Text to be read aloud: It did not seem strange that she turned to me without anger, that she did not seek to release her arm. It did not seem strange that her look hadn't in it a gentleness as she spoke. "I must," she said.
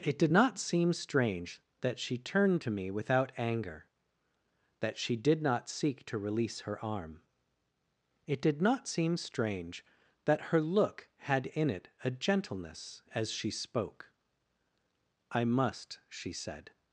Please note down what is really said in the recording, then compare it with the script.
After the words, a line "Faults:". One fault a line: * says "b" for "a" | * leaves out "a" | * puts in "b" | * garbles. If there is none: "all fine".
It did not seem strange that she turned to me without anger, that she did not seek to release her arm. It did not seem strange that her look had in it a gentleness as she spoke. "I must," she said.
Faults:
* says "had" for "hadn't"